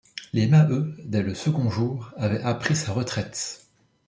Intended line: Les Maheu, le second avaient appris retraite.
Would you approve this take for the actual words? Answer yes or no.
no